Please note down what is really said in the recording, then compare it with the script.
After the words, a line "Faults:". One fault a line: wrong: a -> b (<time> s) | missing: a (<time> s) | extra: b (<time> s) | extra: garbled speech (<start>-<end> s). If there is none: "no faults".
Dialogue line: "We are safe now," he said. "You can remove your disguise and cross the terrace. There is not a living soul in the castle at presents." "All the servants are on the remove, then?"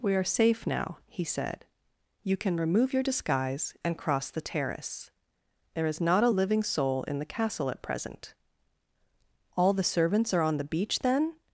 "We are safe now," he said. "You can remove your disguise and cross the terrace. There is not a living soul in the castle at present." "All the servants are on the beach, then?"
Faults:
wrong: presents -> present (7.8 s)
wrong: remove -> beach (10.6 s)